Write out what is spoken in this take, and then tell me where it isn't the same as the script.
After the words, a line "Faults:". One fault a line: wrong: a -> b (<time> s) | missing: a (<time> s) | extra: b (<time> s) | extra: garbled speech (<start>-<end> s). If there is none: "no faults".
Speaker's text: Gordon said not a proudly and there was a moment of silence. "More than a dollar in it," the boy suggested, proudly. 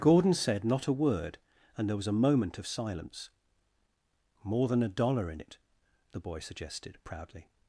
Gordon said not a word and there was a moment of silence. "More than a dollar in it," the boy suggested, proudly.
Faults:
wrong: proudly -> word (0.9 s)